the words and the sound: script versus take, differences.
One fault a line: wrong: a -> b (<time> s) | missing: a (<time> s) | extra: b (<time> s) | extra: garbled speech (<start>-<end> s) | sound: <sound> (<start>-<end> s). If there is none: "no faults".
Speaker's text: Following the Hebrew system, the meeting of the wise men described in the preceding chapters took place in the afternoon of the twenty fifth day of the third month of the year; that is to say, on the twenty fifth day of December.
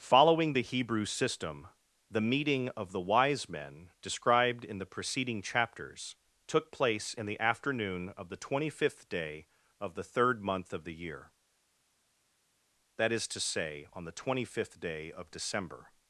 no faults